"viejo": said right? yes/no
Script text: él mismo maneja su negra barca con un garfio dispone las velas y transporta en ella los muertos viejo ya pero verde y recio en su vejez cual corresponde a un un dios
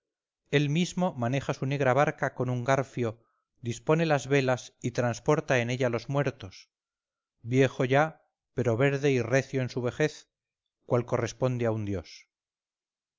yes